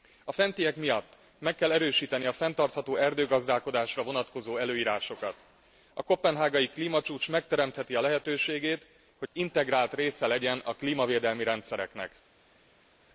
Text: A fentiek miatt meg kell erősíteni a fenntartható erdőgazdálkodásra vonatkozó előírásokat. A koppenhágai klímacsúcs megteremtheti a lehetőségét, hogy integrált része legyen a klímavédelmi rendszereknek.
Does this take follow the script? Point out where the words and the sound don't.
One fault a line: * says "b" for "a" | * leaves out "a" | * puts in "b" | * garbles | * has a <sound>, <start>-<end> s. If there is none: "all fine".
all fine